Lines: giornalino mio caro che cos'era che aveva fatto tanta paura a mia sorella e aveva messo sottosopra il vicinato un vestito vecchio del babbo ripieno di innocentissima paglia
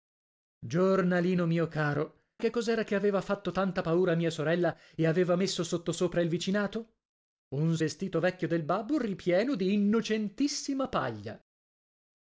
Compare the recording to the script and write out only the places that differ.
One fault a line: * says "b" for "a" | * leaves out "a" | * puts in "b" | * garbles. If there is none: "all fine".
all fine